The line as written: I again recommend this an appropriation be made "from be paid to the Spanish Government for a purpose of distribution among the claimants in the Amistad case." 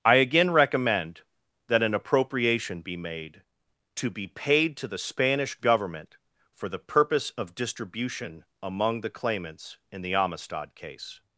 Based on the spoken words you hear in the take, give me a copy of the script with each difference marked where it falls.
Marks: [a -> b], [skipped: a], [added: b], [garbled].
I again recommend [this -> that] an appropriation be made ["from -> to] be paid to the Spanish Government for [a -> the] purpose of distribution among the claimants in the Amistad case."